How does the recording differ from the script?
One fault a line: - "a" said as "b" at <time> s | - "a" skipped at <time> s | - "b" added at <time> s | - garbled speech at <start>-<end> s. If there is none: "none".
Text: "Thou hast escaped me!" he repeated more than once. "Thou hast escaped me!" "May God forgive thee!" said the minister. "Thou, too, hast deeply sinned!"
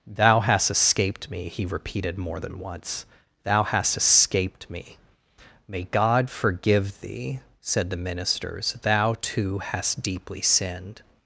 - "minister" said as "ministers" at 8.0 s